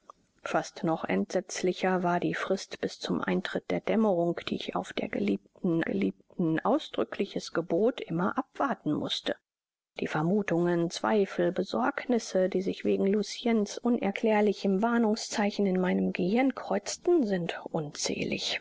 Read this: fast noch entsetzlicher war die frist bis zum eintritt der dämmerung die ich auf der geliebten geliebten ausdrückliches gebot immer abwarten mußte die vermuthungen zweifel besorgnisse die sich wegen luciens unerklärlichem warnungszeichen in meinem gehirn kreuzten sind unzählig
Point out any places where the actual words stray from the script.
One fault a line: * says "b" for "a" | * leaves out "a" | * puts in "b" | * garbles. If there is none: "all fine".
all fine